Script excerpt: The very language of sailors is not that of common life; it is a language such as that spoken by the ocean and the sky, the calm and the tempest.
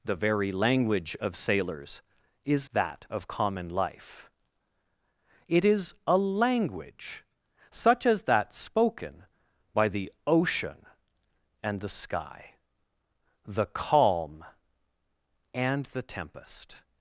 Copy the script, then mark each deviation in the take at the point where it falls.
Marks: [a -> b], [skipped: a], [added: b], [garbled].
The very language of sailors is [skipped: not] that of common life; it is a language such as that spoken by the ocean and the sky, the calm and the tempest.